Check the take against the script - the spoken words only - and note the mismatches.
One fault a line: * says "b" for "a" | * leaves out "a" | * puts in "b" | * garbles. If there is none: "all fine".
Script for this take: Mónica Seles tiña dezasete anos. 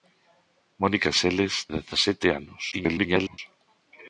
* leaves out "tiña"
* garbles